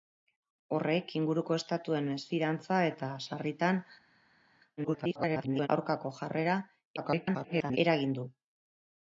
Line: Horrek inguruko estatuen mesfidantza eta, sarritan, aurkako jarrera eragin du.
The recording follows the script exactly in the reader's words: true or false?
false